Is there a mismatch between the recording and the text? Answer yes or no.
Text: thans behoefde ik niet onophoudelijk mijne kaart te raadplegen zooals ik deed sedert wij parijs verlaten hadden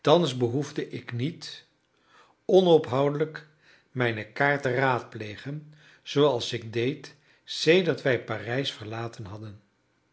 no